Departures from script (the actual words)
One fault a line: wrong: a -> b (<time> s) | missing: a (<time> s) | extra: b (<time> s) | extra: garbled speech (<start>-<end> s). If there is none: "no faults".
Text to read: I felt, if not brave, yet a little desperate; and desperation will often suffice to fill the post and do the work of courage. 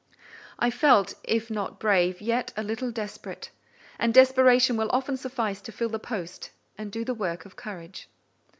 no faults